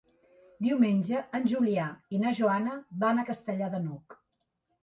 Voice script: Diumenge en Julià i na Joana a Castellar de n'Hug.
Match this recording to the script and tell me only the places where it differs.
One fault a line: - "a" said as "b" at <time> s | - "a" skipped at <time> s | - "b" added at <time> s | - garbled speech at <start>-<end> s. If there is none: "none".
- "van" added at 3.0 s